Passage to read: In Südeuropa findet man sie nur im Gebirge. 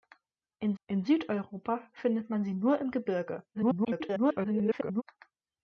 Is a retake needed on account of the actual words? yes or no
yes